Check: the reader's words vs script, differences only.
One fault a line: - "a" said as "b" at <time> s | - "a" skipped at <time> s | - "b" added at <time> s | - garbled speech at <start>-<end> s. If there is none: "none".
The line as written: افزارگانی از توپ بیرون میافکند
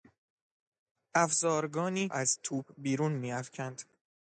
none